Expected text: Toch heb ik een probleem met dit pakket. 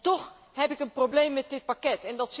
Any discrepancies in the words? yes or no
no